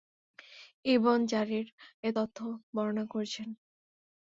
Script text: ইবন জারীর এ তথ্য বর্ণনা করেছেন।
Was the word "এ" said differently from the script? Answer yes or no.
no